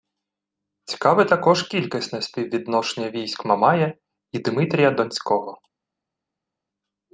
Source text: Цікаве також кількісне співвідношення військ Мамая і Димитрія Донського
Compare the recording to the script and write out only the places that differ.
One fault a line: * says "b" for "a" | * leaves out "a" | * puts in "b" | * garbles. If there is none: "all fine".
all fine